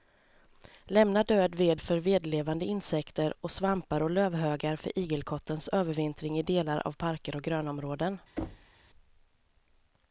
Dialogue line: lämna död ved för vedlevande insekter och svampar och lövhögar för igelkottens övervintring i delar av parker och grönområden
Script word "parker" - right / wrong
right